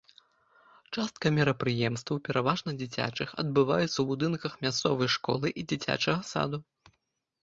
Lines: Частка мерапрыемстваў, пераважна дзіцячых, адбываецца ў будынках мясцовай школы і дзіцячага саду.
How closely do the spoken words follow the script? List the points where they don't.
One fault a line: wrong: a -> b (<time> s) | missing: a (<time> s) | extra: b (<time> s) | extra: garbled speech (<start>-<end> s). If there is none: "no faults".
no faults